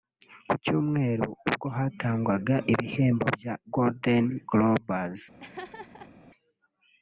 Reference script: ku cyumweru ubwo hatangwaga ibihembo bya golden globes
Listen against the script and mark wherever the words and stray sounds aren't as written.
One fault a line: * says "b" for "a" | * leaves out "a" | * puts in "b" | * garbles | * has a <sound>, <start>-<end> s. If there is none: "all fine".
* has a laugh, 5.4-6.1 s